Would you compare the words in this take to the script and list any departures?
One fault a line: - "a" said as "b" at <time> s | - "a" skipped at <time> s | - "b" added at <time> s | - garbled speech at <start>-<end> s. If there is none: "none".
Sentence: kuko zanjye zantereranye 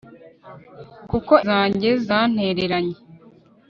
none